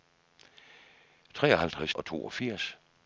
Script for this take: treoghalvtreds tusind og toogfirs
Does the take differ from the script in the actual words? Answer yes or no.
yes